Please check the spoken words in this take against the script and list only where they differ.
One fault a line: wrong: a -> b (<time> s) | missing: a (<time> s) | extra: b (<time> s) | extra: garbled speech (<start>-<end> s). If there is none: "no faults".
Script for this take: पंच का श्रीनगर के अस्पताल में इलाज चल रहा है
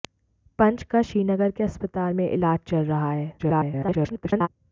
extra: garbled speech (3.4-4.5 s)